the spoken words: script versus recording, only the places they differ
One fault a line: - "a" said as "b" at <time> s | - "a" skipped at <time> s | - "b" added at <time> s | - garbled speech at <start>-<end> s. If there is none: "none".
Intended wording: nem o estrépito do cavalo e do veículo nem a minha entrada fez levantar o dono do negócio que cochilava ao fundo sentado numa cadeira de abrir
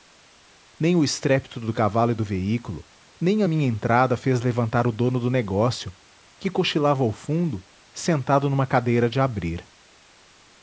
none